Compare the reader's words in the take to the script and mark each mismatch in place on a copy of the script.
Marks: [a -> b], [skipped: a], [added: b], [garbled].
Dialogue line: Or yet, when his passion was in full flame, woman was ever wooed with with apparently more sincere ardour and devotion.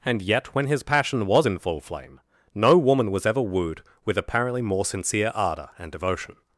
[Or -> And] yet, when his passion was in full flame, [added: no] woman was ever wooed with [skipped: with] apparently more sincere ardour and devotion.